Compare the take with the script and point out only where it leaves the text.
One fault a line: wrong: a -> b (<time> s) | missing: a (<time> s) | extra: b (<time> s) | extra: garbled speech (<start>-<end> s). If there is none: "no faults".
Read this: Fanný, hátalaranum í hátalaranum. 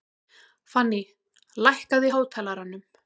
wrong: hátalaranum -> lækkaðu (1.7 s)